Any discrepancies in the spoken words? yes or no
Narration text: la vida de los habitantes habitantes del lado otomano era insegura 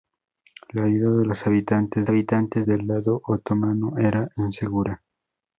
no